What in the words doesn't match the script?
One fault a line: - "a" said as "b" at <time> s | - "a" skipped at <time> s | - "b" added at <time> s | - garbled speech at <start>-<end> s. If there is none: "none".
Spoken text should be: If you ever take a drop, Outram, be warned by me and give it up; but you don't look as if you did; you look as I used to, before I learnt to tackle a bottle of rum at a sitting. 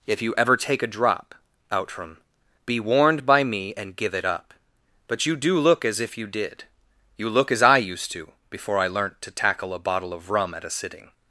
- "don't" said as "do" at 5.3 s